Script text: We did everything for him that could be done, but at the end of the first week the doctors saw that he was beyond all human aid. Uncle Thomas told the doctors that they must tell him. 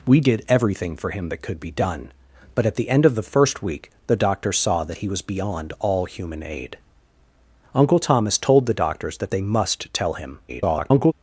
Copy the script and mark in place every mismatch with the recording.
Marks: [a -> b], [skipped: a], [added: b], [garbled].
We did everything for him that could be done, but at the end of the first week the doctors saw that he was beyond all human aid. Uncle Thomas told the doctors that they must tell him. [garbled]